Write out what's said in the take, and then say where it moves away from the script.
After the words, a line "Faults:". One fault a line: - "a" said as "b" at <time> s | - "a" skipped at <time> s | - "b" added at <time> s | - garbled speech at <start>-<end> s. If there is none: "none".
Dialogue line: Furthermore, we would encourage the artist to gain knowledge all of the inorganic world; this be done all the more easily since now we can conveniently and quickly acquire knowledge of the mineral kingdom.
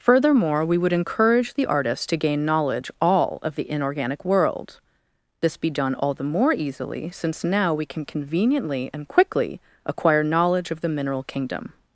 Furthermore, we would encourage the artist to gain knowledge all of the inorganic world; this be done all the more easily since now we can conveniently and quickly acquire knowledge of the mineral kingdom.
Faults:
none